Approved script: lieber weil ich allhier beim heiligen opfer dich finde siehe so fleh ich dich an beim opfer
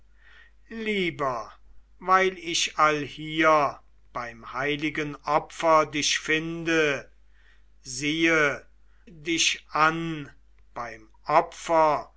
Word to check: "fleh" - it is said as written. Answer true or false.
false